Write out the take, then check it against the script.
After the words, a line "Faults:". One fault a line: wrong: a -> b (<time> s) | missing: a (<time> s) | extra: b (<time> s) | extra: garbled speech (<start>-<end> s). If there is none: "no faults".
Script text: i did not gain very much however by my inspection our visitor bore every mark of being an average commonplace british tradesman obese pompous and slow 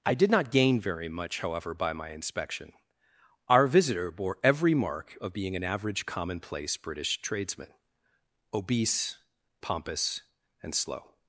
i did not gain very much however by my inspection our visitor bore every mark of being an average commonplace british tradesman obese pompous and slow
Faults:
no faults